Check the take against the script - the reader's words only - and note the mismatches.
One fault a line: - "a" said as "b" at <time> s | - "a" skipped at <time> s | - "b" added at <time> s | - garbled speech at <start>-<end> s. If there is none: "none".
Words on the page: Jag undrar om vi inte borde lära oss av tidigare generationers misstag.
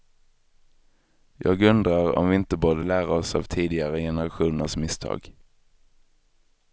none